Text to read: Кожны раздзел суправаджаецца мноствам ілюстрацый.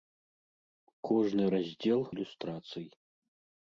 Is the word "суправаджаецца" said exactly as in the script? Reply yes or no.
no